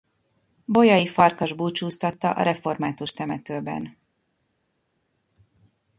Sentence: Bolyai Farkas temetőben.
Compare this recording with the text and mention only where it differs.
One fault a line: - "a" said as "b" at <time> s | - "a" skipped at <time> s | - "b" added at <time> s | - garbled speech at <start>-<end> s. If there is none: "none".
- "búcsúztatta a református" added at 1.5 s